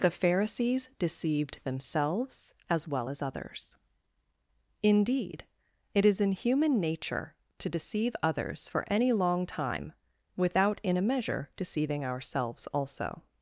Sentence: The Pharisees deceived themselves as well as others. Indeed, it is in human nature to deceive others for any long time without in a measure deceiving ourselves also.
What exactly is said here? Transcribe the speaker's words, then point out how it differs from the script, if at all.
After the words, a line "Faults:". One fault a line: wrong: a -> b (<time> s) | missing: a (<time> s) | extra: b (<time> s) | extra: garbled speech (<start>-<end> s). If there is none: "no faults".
The Pharisees deceived themselves as well as others. Indeed, it is in human nature to deceive others for any long time without in a measure deceiving ourselves also.
Faults:
no faults